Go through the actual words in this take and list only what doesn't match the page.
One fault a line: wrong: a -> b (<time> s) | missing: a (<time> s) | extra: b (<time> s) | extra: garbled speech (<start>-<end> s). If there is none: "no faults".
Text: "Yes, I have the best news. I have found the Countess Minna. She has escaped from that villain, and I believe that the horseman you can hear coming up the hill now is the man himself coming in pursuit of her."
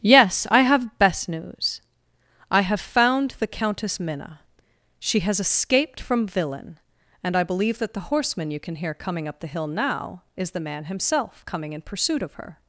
missing: the (1.0 s)
missing: that (6.3 s)